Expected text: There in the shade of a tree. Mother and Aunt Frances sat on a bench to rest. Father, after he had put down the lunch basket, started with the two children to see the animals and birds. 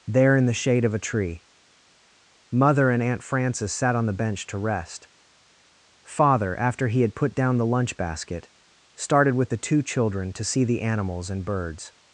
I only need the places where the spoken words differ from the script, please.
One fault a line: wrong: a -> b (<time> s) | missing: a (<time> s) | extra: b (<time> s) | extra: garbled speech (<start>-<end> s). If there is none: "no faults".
wrong: a -> the (4.1 s)